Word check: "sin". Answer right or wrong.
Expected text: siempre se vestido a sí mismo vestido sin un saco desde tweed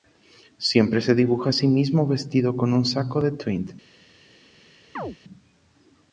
wrong